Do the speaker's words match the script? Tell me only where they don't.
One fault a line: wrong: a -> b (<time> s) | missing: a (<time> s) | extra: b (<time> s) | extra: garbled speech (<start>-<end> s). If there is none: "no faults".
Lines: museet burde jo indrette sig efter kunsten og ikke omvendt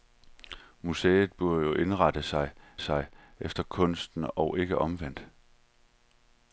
extra: sig (2.8 s)